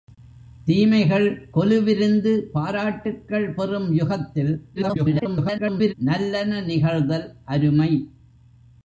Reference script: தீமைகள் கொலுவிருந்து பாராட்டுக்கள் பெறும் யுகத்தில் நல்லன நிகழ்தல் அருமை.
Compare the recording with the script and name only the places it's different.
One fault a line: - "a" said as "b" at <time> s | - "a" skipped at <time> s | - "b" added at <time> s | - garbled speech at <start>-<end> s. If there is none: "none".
- garbled speech at 4.8-5.9 s